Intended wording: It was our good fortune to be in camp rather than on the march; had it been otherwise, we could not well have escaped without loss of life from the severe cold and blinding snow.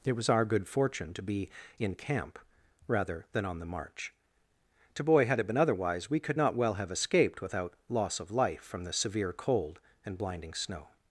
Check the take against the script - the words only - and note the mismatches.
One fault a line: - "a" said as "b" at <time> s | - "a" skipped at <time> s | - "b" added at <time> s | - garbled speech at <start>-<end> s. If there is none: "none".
- "to boy" added at 4.9 s